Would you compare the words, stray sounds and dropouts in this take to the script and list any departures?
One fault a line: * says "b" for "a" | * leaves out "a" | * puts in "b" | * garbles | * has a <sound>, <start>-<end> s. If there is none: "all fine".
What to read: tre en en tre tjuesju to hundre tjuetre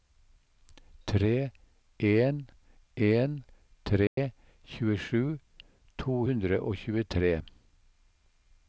* has a dropout, 4.1-4.2 s
* puts in "og"